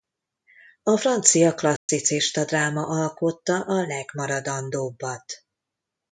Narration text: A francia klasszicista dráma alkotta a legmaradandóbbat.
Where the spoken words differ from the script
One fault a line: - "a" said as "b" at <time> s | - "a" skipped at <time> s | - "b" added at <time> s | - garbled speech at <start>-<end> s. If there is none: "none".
none